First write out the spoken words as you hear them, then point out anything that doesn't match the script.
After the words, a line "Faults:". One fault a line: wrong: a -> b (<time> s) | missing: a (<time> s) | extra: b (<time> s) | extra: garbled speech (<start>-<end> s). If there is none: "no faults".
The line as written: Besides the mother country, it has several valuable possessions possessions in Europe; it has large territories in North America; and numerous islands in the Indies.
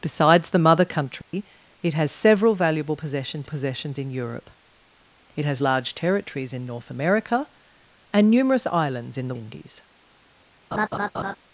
Besides the mother country, it has several valuable possessions possessions in Europe; it has large territories in North America; and numerous islands in the Indies.
Faults:
no faults